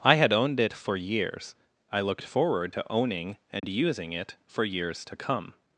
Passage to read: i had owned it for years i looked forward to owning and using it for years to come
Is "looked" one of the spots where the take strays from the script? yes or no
no